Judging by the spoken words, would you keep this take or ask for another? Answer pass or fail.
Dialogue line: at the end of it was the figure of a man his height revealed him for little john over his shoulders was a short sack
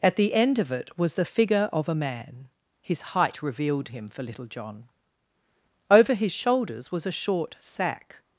pass